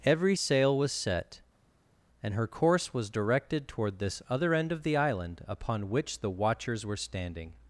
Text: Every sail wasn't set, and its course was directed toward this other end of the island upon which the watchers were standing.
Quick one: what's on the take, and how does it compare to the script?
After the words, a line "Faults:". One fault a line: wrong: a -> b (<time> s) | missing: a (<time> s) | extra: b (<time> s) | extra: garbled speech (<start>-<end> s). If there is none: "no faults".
Every sail was set, and her course was directed toward this other end of the island upon which the watchers were standing.
Faults:
wrong: wasn't -> was (0.8 s)
wrong: its -> her (2.3 s)